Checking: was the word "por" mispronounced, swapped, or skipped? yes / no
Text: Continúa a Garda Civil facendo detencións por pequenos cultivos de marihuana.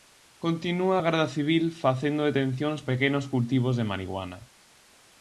yes